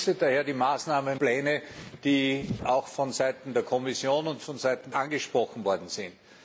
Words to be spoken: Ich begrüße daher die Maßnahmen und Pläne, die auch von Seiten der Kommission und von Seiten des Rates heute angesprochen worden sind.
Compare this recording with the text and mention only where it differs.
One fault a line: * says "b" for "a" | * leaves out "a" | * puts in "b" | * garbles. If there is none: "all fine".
* leaves out "und"
* leaves out "des Rates heute"